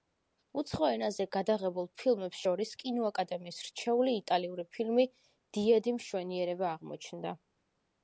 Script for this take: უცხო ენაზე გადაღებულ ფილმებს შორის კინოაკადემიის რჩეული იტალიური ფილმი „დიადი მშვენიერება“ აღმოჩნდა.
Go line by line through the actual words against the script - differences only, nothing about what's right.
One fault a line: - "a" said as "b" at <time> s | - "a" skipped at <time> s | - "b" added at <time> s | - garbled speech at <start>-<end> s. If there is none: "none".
none